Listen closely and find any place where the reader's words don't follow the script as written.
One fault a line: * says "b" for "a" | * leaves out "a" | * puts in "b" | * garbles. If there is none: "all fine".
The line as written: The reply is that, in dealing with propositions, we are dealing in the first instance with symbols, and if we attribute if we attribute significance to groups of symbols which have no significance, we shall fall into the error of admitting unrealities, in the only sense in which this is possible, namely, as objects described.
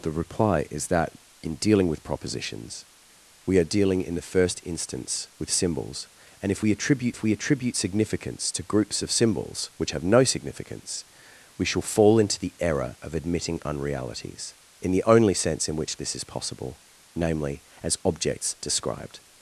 all fine